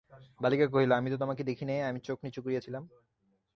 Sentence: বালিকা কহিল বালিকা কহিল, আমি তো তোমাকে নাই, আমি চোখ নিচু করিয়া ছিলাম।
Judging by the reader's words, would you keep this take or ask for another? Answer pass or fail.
fail